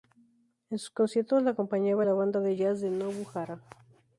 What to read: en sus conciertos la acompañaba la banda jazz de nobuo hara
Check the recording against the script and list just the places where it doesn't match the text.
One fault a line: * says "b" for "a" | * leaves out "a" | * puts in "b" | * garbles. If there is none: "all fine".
* puts in "de"